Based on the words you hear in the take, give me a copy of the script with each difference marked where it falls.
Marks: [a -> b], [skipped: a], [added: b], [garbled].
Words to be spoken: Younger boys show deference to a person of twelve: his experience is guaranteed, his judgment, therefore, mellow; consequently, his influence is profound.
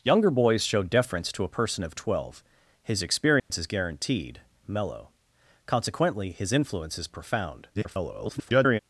Younger boys show deference to a person of twelve: his experience is guaranteed, [skipped: his judgment, therefore,] mellow; consequently, his influence is profound. [garbled]